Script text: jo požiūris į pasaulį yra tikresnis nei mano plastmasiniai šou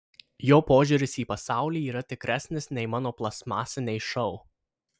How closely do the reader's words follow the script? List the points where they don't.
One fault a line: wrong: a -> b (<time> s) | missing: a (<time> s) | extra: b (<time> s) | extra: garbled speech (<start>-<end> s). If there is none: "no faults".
no faults